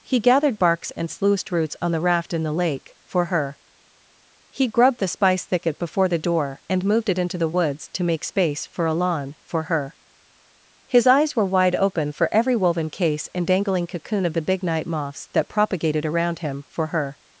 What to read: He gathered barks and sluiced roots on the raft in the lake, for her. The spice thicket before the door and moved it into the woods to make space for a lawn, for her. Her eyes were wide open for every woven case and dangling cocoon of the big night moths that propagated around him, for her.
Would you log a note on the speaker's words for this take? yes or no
yes